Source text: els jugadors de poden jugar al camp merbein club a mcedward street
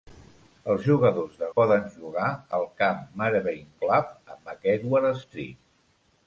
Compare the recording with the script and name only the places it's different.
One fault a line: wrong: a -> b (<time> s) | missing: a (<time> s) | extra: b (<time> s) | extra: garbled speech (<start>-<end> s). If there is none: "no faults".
no faults